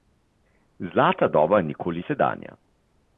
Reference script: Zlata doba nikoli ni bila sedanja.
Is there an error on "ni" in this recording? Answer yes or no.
yes